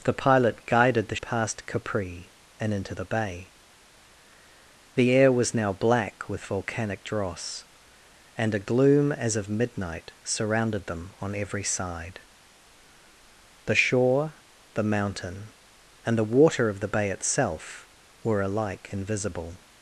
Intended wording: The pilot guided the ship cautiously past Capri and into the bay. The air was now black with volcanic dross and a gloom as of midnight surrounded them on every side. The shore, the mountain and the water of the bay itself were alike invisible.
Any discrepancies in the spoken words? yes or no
yes